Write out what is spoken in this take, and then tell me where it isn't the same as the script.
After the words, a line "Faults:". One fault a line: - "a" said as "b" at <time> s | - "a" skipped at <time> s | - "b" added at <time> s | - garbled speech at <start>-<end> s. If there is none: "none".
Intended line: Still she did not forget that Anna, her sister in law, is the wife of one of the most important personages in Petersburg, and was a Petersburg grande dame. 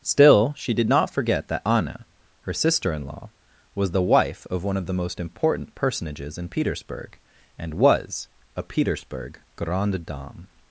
Still she did not forget that Anna, her sister in law, was the wife of one of the most important personages in Petersburg, and was a Petersburg grande dame.
Faults:
- "is" said as "was" at 3.8 s